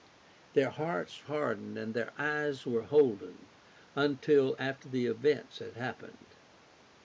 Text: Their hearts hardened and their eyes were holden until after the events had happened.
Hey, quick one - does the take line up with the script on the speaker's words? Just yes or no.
yes